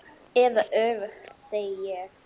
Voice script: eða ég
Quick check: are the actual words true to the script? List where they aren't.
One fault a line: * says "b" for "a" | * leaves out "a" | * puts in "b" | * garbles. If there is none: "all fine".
* puts in "öfugt segi"